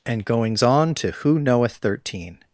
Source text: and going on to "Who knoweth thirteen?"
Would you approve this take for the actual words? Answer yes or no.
no